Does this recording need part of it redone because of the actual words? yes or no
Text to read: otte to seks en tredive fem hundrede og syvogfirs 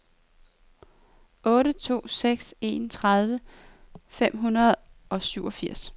no